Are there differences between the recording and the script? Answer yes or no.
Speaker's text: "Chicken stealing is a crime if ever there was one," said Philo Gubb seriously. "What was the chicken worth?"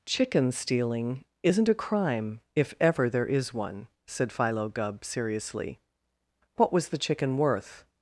yes